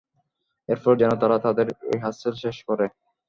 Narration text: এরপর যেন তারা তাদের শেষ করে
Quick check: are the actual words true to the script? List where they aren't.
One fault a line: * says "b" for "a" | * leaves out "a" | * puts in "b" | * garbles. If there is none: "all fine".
* puts in "রিহার্সেল"